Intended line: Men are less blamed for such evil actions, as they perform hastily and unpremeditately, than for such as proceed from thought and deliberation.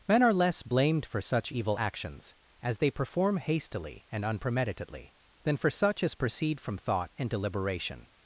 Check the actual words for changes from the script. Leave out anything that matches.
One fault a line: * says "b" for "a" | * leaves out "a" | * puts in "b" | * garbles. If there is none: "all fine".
all fine